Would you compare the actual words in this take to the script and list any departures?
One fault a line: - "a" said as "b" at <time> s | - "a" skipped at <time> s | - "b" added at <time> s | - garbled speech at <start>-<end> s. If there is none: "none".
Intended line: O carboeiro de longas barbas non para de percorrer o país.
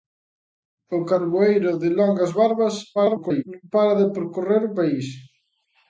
- garbled speech at 3.0-3.4 s